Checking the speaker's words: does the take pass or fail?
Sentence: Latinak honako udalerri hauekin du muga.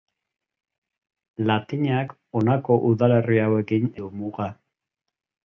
pass